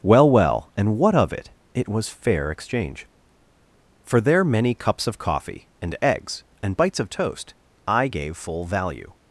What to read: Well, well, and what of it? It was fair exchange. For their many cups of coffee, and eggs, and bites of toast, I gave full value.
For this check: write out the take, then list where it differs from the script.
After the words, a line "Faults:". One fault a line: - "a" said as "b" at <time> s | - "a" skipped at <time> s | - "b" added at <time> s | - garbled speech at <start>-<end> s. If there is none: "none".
Well, well, and what of it? It was fair exchange. For their many cups of coffee, and eggs, and bites of toast, I gave full value.
Faults:
none